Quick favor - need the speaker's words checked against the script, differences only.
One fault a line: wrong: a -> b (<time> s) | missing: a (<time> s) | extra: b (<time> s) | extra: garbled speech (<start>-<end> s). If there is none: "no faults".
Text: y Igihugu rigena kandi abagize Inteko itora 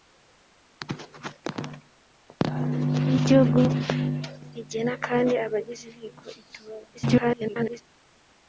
extra: garbled speech (6.9-7.8 s)